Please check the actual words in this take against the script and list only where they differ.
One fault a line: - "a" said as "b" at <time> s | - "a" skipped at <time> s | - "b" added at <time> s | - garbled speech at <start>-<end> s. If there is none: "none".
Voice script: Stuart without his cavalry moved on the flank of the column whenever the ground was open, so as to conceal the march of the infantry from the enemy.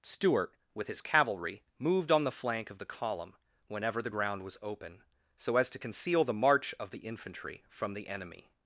- "without" said as "with" at 0.7 s